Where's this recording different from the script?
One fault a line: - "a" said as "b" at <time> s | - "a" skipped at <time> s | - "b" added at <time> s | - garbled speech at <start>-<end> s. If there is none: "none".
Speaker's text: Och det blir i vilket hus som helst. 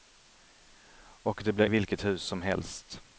none